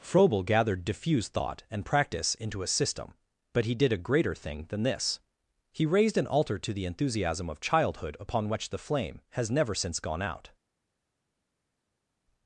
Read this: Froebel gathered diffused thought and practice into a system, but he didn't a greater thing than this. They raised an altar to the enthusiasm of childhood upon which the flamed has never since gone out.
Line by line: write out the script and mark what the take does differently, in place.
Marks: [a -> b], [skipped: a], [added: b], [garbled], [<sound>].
Froebel gathered diffused thought and practice into a system, but he [didn't -> did] a greater thing than this. [They -> He] raised an altar to the enthusiasm of childhood upon which the [flamed -> flame] has never since gone out.